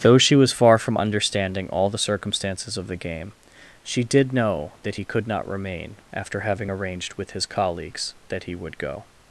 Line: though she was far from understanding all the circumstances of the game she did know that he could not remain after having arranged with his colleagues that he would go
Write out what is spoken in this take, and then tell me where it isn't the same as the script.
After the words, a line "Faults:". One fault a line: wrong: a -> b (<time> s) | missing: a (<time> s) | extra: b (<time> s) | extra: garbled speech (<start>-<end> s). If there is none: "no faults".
though she was far from understanding all the circumstances of the game she did know that he could not remain after having arranged with his colleagues that he would go
Faults:
no faults